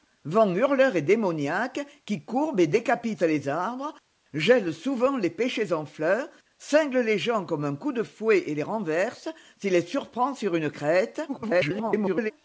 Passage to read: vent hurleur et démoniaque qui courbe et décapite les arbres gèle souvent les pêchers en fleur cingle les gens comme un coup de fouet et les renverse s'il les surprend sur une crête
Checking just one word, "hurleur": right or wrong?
right